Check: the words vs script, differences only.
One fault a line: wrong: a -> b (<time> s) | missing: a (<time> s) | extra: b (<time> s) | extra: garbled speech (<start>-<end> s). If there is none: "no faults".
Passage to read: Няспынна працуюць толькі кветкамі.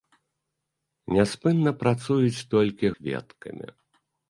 no faults